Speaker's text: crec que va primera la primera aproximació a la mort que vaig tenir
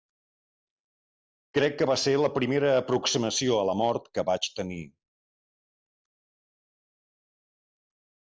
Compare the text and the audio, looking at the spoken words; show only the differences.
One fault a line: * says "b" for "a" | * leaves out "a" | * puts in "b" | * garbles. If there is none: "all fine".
* says "ser" for "primera"